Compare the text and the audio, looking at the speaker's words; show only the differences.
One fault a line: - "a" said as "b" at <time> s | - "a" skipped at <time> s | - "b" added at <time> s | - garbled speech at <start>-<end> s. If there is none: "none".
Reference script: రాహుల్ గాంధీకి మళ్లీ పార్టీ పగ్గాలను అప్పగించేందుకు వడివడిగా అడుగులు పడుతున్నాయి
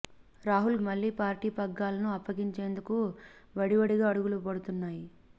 - "గాంధీకి" skipped at 0.8 s